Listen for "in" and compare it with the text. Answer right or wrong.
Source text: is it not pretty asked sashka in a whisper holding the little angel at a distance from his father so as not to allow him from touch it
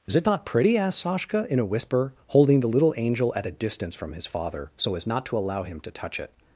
right